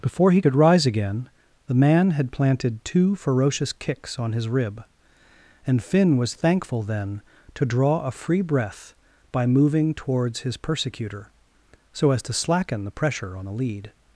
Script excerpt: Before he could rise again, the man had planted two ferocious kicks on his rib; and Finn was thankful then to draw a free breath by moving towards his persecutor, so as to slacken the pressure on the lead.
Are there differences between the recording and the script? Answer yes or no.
no